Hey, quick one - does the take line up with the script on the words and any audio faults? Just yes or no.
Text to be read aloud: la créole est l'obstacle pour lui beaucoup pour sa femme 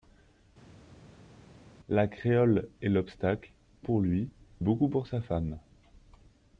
yes